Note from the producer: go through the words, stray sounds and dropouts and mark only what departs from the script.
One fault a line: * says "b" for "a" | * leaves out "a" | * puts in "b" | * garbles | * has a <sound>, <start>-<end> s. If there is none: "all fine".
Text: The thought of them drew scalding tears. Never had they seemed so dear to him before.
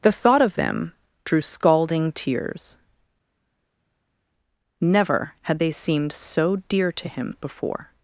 all fine